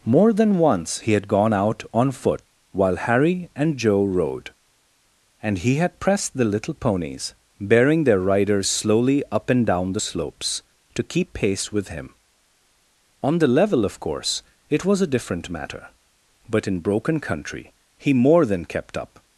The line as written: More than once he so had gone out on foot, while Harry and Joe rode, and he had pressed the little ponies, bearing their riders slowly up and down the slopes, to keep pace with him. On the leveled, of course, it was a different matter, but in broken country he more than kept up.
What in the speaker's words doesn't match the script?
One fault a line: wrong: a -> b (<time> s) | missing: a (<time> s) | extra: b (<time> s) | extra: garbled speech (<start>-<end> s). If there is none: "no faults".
missing: so (1.1 s)
wrong: leveled -> level (13.5 s)